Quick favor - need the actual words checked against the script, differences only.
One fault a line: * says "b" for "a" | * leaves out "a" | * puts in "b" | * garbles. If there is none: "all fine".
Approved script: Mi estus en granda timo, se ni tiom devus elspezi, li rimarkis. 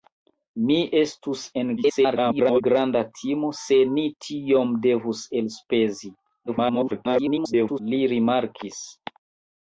* garbles
* garbles